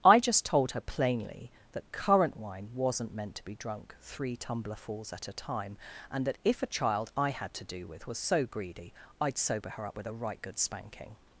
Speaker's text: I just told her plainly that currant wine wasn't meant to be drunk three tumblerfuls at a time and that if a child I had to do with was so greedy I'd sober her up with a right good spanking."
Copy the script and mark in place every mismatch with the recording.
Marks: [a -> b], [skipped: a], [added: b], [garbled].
I just told her plainly that currant wine wasn't meant to be drunk three tumblerfuls at a time and that if a child I had to do with was so greedy I'd sober her up with a right good spanking."